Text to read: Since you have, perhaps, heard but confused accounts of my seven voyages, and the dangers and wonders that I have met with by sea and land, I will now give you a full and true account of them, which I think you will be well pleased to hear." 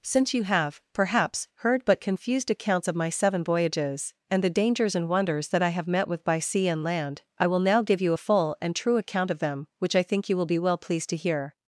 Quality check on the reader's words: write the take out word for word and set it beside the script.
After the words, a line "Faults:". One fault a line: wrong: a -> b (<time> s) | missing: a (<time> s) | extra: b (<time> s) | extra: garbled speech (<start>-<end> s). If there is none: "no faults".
Since you have, perhaps, heard but confused accounts of my seven voyages, and the dangers and wonders that I have met with by sea and land, I will now give you a full and true account of them, which I think you will be well pleased to hear."
Faults:
no faults